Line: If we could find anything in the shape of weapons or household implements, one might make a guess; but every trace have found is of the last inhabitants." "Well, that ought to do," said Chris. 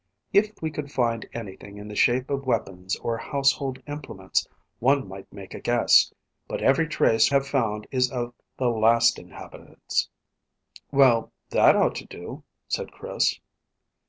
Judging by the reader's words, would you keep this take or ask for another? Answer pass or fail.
pass